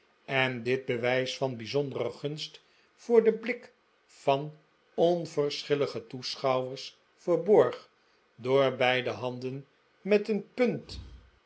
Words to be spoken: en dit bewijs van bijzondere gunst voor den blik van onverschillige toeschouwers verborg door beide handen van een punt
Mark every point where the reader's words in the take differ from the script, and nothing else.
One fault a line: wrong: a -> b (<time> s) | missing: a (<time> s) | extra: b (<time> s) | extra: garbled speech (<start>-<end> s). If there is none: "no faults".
wrong: van -> met (10.0 s)